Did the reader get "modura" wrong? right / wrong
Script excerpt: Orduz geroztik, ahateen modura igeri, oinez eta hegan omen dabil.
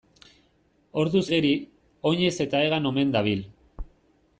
wrong